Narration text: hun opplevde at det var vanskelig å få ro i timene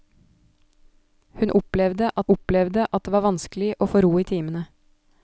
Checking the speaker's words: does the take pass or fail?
fail